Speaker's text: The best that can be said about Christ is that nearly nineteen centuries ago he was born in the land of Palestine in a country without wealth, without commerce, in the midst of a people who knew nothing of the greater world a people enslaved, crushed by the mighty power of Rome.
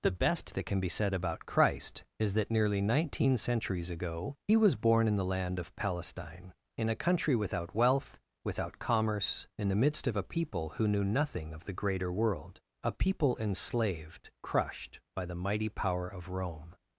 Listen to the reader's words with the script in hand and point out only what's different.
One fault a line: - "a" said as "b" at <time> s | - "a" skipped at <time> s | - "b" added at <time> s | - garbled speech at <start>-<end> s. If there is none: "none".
none